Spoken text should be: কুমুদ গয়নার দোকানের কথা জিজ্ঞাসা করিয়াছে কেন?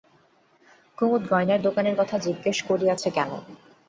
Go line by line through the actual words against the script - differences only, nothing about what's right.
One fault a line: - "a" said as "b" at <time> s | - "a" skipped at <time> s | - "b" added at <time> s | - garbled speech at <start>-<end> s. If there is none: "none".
none